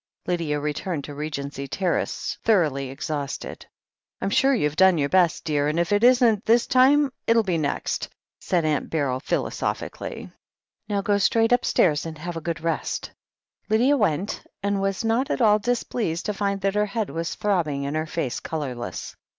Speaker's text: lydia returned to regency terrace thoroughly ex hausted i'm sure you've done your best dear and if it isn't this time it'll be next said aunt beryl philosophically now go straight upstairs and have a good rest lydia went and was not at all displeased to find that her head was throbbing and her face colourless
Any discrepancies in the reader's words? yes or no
no